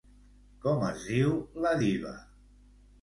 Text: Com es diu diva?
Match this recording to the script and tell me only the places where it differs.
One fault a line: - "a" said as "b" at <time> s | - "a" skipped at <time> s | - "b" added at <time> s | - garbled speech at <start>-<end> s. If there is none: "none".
- "la" added at 1.7 s